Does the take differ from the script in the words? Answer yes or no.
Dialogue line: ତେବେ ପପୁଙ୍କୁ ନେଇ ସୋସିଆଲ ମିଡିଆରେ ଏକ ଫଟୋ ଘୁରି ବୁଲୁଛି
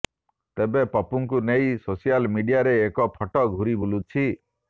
no